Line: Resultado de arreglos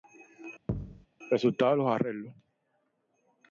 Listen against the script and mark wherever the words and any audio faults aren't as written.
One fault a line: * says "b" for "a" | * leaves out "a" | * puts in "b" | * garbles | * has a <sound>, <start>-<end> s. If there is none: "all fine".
* has a thud, 0.7-1.1 s
* puts in "los"